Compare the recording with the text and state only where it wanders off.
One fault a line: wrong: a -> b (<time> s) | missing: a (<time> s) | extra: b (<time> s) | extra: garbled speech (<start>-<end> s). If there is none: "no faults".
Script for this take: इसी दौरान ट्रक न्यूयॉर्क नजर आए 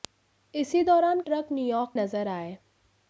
no faults